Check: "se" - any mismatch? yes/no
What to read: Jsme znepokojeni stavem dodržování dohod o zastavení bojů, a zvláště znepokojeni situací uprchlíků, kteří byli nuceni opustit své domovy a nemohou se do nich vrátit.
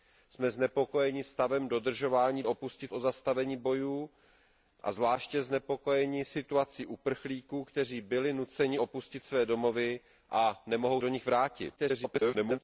yes